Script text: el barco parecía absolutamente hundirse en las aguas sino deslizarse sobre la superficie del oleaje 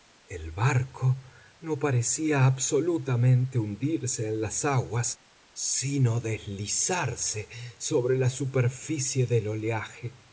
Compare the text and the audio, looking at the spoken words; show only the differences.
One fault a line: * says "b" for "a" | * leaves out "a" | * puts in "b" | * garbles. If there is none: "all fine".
* puts in "no"